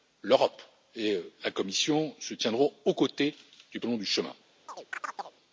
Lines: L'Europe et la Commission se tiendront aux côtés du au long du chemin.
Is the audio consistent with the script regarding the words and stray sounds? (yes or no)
no